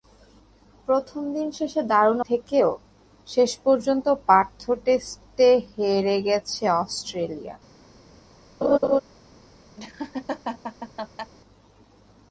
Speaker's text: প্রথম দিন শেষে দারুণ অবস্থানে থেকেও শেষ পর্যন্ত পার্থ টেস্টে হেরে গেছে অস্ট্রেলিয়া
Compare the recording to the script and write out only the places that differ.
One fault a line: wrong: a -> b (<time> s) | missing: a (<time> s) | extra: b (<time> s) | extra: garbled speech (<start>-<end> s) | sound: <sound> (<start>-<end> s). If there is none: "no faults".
missing: অবস্থানে (2.2 s)
sound: laugh (8.6-9.0 s)
sound: laugh (9.8-11.3 s)